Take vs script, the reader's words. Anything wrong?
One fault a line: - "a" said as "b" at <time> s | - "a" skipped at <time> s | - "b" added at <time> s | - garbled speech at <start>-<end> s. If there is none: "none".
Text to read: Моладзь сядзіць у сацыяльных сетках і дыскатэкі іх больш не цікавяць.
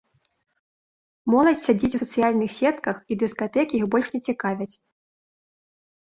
none